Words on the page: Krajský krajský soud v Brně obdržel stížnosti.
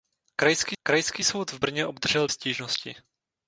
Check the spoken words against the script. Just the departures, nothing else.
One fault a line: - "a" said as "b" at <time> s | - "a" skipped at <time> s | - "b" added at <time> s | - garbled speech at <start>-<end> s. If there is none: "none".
none